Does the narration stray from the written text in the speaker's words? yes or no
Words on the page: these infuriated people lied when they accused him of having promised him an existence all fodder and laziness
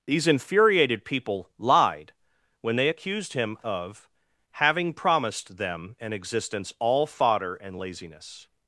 yes